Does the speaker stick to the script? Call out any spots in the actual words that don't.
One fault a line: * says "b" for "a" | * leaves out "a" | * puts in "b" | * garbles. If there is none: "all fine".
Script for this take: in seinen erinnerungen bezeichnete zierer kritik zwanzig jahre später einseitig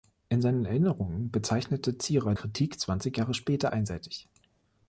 all fine